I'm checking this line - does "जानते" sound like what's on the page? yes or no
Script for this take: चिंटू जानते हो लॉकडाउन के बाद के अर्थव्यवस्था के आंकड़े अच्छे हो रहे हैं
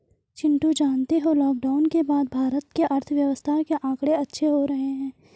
yes